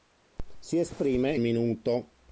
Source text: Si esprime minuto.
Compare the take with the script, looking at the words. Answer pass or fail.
pass